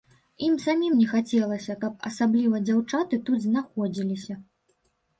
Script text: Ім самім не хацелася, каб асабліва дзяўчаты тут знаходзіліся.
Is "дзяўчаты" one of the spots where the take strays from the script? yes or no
no